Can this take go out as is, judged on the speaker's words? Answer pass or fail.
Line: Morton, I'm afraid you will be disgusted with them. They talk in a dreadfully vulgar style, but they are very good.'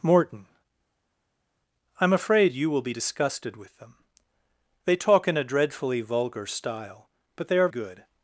fail